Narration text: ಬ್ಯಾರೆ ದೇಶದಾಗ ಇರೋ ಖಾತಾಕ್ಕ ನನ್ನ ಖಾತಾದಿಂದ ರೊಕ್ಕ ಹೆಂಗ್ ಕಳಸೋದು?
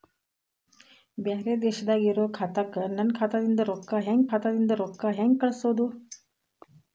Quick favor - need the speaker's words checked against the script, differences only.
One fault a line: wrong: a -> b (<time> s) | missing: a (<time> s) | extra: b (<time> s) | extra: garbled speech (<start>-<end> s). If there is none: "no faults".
extra: ಖಾತಾದಿಂದ ರೊಕ್ಕ ಹೆಂಗ್ (4.3 s)